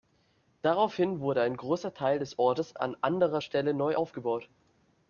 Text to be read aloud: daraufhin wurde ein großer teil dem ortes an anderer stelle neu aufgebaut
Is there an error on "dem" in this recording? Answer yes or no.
yes